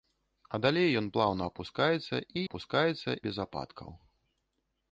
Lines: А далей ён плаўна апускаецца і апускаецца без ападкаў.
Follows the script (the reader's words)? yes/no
yes